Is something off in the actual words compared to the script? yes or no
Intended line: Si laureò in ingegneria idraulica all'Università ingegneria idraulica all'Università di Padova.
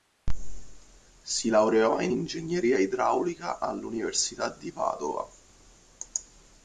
yes